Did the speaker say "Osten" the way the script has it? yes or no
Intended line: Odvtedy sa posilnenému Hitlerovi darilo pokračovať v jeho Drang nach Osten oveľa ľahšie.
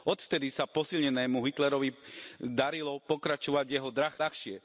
no